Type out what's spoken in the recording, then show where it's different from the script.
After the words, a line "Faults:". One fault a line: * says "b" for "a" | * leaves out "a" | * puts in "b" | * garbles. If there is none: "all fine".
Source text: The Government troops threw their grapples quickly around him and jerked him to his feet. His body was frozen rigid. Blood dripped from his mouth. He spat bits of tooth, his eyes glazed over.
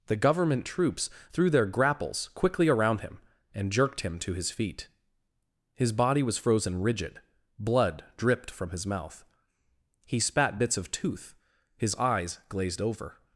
The Government troops threw their grapples quickly around him and jerked him to his feet. His body was frozen rigid. Blood dripped from his mouth. He spat bits of tooth, his eyes glazed over.
Faults:
all fine